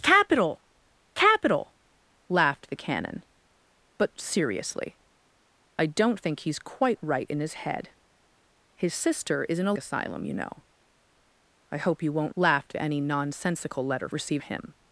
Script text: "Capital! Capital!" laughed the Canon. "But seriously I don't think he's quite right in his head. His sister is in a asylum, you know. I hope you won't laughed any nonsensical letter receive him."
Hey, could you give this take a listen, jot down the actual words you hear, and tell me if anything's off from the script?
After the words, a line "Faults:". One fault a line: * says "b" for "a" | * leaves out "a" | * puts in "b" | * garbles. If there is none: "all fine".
"Capital! Capital!" laughed the Canon. "But seriously I don't think he's quite right in his head. His sister is in a asylum, you know. I hope you won't laughed any nonsensical letter receive him."
Faults:
all fine